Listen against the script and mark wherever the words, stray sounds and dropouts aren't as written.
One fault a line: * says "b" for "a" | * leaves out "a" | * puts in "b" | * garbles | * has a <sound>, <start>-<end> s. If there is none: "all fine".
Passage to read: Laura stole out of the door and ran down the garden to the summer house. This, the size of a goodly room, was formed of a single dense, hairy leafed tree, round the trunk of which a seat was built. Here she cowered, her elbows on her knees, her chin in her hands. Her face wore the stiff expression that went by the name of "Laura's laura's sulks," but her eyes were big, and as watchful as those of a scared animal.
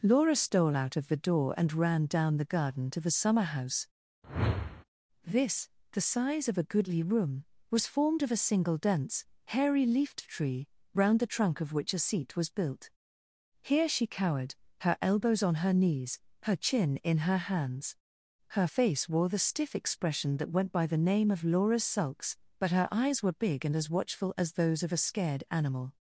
* has a whoosh, 4.2-4.8 s
* leaves out "laura's"